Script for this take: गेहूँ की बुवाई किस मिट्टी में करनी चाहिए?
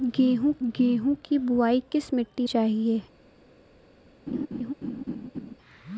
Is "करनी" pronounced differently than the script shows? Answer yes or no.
yes